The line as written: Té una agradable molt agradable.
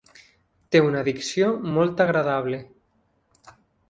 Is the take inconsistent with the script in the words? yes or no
yes